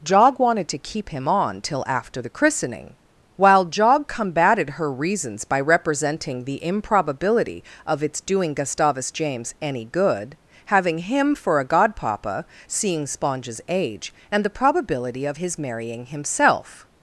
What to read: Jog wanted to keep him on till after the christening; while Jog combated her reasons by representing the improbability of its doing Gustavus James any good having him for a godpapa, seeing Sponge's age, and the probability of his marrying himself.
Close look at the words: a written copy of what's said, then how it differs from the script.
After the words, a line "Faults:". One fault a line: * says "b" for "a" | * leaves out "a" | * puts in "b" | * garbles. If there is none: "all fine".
Jog wanted to keep him on till after the christening; while Jog combated her reasons by representing the improbability of its doing Gustavus James any good having him for a godpapa, seeing Sponge's age, and the probability of his marrying himself.
Faults:
all fine